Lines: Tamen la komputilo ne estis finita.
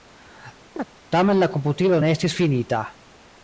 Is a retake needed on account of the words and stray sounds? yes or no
yes